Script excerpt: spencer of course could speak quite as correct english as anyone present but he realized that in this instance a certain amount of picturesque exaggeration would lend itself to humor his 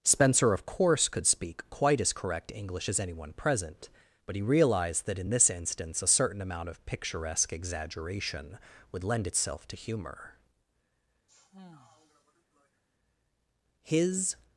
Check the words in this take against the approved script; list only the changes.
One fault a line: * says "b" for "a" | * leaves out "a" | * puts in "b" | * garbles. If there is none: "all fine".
all fine